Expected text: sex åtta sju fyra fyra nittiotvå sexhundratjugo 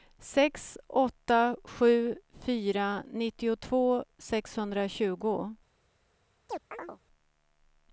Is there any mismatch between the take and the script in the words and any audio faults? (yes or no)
yes